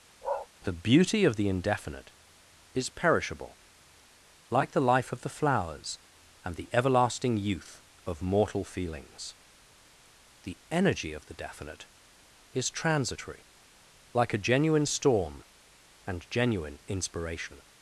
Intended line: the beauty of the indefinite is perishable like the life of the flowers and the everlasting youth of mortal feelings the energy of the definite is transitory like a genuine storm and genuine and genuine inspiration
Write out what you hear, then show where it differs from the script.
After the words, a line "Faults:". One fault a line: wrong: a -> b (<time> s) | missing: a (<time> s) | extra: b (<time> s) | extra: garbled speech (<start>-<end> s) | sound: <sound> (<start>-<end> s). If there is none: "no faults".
the beauty of the indefinite is perishable like the life of the flowers and the everlasting youth of mortal feelings the energy of the definite is transitory like a genuine storm and genuine inspiration
Faults:
sound: bark (0.2-0.5 s)
missing: and genuine (16.8 s)